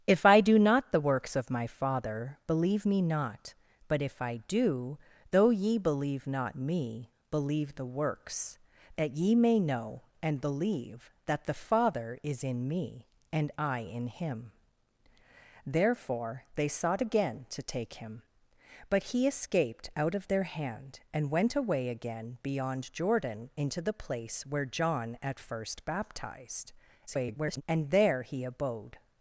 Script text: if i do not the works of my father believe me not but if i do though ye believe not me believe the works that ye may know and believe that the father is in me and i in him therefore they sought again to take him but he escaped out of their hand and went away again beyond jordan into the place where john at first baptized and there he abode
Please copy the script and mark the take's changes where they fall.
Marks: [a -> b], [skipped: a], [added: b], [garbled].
if i do not the works of my father believe me not but if i do though ye believe not me believe the works that ye may know and believe that the father is in me and i in him therefore they sought again to take him but he escaped out of their hand and went away again beyond jordan into the place where john at first baptized [garbled] and there he abode